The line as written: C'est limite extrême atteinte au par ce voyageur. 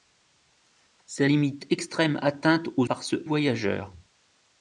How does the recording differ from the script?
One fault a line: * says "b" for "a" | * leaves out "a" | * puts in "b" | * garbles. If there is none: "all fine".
all fine